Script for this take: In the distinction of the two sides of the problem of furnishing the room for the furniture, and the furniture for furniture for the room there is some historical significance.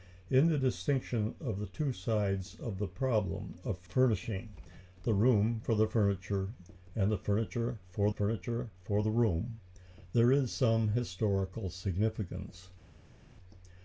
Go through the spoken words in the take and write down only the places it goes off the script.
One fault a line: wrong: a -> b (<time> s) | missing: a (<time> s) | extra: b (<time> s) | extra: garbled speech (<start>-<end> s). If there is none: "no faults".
no faults